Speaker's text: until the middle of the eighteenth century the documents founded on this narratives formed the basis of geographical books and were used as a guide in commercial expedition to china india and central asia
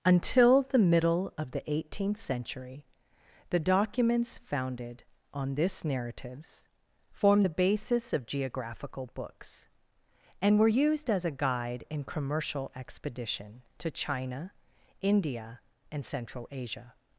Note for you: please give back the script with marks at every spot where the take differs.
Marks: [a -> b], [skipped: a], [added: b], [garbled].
until the middle of the eighteenth century the documents founded on this narratives formed the basis of geographical books and were used as a guide in commercial expedition to china india and central asia